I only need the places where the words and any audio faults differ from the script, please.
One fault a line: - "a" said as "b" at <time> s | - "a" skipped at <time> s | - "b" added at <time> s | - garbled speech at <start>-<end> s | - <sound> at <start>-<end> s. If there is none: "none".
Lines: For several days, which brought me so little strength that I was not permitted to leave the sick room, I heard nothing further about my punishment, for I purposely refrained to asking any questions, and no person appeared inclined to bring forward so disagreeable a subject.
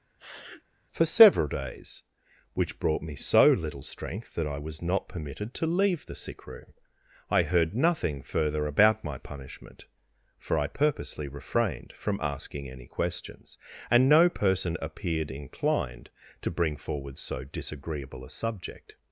- sniff at 0.2-0.6 s
- "to" said as "from" at 11.9 s